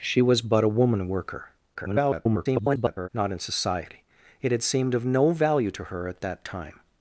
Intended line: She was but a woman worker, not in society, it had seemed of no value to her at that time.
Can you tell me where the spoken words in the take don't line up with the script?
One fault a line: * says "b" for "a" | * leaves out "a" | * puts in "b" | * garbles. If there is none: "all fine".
* garbles